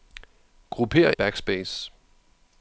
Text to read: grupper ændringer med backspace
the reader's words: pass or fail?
fail